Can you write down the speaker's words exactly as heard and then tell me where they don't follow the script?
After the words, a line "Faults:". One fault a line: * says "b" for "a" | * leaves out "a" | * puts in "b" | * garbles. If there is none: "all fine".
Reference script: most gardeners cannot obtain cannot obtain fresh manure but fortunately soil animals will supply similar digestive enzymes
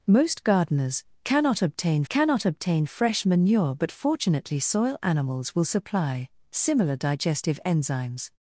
most gardeners cannot obtain cannot obtain fresh manure but fortunately soil animals will supply similar digestive enzymes
Faults:
all fine